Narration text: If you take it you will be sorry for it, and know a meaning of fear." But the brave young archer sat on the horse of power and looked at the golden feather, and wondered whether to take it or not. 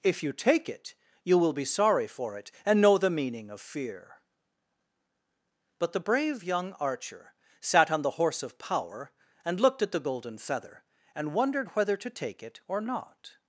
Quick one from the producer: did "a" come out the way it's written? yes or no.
no